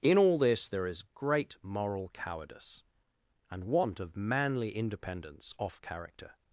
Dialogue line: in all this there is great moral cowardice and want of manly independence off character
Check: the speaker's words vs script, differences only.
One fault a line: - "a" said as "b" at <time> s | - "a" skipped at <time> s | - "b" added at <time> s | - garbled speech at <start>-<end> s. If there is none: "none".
none